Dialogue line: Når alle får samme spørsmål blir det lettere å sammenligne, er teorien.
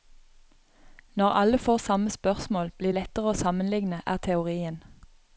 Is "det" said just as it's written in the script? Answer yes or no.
no